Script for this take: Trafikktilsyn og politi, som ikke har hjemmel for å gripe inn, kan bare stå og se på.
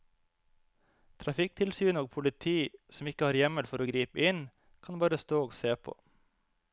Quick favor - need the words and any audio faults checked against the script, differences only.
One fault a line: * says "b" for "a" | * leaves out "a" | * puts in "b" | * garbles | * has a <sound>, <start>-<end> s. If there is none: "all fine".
all fine